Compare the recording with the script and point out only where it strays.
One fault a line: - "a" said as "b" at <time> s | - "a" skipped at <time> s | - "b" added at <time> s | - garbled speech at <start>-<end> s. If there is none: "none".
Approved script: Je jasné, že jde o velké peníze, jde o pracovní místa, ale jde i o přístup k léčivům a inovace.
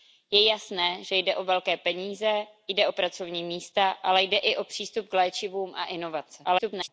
- garbled speech at 6.4-6.9 s